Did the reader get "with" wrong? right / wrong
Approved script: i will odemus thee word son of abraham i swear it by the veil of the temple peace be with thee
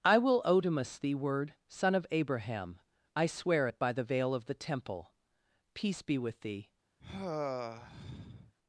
right